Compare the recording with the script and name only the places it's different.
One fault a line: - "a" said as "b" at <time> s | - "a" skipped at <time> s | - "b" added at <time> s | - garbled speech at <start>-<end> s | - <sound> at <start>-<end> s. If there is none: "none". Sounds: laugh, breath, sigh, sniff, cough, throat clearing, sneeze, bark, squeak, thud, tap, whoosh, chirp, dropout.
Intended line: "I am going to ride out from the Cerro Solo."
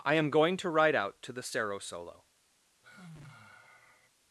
- "from" said as "to" at 1.2 s
- sigh at 2.8-4.1 s